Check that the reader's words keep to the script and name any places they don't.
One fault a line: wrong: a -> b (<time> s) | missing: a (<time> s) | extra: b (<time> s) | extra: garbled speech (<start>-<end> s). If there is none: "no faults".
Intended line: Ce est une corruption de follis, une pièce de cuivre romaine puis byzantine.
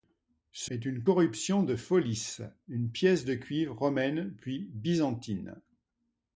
no faults